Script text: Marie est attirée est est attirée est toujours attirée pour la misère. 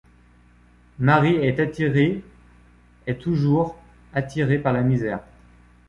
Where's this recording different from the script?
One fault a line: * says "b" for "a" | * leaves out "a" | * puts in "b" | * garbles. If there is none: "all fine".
* leaves out "est attirée est"
* says "par" for "pour"